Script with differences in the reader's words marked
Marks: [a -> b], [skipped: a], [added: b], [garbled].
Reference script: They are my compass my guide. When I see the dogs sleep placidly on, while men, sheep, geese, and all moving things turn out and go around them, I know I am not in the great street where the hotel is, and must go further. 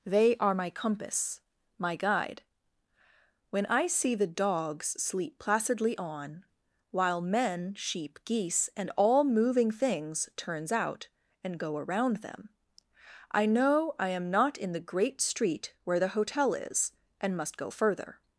They are my compass my guide. When I see the dogs sleep placidly on, while men, sheep, geese, and all moving things [turn -> turns] out and go around them, I know I am not in the great street where the hotel is, and must go further.